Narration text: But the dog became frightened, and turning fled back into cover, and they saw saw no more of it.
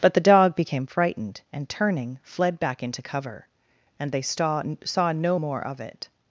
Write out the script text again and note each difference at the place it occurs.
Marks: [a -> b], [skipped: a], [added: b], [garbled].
But the dog became frightened, and turning fled back into cover, and they saw saw no more of it.